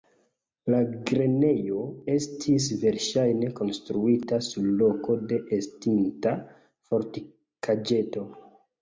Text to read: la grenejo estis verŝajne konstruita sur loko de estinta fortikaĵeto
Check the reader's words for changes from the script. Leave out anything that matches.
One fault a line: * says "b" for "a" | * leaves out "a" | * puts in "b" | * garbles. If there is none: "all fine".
all fine